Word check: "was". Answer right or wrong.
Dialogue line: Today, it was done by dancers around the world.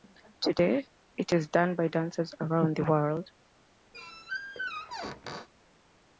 wrong